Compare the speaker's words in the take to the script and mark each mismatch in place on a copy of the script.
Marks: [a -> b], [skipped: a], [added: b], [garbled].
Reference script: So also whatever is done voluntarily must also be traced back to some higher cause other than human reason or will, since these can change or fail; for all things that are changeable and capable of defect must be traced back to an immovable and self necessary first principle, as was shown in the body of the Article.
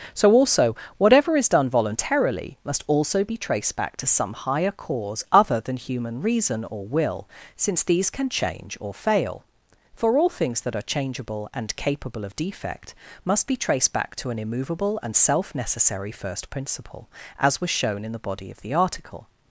So also whatever is done voluntarily must also be traced back to some higher cause other than human reason or will, since these can change or fail; for all things that are changeable and capable of defect must be traced back to an immovable and self necessary first principle, as was shown in the body of the Article.